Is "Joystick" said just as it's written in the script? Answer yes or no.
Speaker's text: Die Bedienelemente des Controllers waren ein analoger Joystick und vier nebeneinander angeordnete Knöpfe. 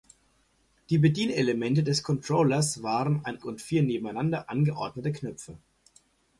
no